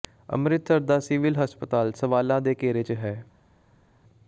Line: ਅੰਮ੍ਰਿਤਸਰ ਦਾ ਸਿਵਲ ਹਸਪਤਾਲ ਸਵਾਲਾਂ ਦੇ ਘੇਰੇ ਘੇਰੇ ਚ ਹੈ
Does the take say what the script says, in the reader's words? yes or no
no